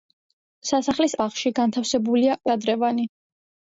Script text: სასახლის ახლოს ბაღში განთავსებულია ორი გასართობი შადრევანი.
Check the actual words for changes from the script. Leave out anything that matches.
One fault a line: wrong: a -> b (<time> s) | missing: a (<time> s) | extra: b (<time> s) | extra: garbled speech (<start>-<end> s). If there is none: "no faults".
missing: ახლოს (1.1 s)
missing: ორი გასართობი (2.4 s)